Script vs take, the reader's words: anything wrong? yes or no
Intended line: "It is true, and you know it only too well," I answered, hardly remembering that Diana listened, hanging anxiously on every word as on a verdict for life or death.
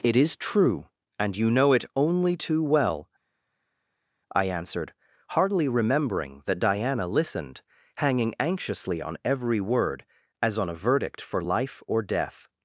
no